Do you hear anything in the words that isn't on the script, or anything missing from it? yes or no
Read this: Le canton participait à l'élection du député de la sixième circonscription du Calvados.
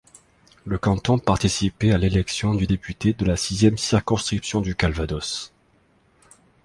no